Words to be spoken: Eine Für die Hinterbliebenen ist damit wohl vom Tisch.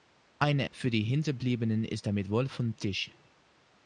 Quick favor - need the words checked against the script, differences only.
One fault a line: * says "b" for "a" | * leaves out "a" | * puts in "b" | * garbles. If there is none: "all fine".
all fine